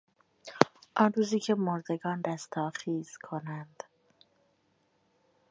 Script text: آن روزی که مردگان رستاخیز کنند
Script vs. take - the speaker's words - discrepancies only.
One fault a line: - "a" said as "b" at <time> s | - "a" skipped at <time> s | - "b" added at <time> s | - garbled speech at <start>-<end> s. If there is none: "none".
none